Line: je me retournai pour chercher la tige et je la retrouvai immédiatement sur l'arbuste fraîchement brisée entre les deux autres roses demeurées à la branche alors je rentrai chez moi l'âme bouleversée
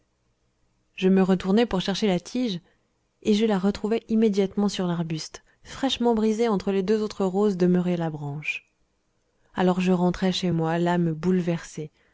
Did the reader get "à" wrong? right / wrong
right